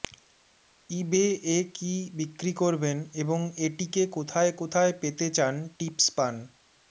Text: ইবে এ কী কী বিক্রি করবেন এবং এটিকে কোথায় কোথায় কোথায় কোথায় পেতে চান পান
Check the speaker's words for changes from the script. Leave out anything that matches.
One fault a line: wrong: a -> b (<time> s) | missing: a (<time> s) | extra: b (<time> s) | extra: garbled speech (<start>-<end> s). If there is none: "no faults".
missing: কী (1.9 s)
missing: কোথায় কোথায় (4.9 s)
extra: টিপস (5.8 s)